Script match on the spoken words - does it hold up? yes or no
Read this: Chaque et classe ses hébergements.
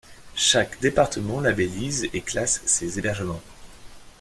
no